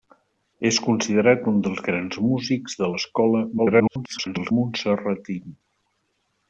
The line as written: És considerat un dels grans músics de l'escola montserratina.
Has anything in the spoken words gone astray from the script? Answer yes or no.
yes